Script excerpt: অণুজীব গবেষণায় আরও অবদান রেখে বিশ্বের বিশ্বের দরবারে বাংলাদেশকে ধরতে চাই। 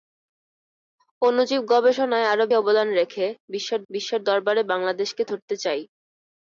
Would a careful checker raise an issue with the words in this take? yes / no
no